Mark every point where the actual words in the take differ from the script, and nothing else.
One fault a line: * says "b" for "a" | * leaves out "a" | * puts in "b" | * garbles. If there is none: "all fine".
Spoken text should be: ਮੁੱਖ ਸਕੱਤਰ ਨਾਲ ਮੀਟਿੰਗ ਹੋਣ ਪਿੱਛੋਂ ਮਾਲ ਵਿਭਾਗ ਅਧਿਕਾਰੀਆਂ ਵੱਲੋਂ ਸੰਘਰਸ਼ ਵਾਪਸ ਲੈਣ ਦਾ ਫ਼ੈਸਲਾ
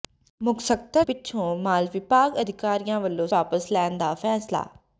* leaves out "ਨਾਲ ਮੀਟਿੰਗ ਹੋਣ"
* leaves out "ਸੰਘਰਸ਼"